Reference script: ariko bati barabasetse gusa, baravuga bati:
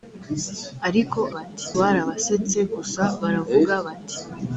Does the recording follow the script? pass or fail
pass